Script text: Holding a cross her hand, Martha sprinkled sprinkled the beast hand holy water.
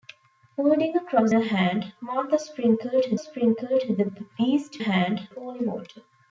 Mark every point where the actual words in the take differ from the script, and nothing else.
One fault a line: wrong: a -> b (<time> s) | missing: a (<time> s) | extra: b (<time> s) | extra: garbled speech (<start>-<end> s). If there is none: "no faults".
no faults